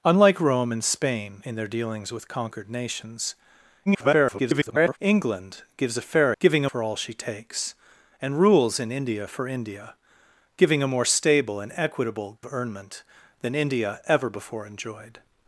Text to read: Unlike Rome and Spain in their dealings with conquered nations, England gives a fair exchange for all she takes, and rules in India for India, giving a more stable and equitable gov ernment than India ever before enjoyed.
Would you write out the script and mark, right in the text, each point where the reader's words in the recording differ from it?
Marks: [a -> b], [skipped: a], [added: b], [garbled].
Unlike Rome and Spain in their dealings with conquered nations, [garbled] England gives a fair [exchange -> giving] for all she takes, and rules in India for India, giving a more stable and equitable [skipped: gov] ernment than India ever before enjoyed.